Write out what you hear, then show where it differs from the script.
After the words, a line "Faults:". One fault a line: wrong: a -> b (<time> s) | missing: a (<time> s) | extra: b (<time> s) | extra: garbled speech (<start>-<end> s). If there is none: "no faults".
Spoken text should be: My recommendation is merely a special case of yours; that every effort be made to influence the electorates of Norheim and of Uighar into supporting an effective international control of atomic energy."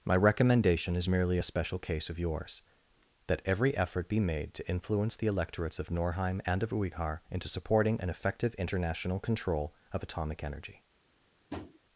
My recommendation is merely a special case of yours; that every effort be made to influence the electorates of Norheim and of Uighar into supporting an effective international control of atomic energy."
Faults:
no faults